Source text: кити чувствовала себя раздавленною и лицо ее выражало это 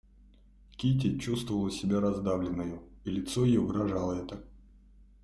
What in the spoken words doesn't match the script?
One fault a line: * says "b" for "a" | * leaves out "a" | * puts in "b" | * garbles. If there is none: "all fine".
all fine